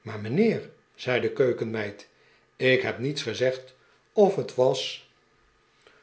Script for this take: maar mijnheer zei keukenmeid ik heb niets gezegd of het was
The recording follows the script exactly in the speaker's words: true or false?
false